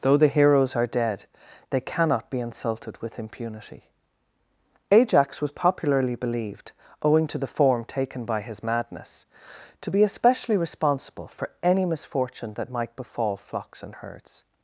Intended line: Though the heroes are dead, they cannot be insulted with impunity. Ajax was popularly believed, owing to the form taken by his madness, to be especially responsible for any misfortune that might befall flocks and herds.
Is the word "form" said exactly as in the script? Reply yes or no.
yes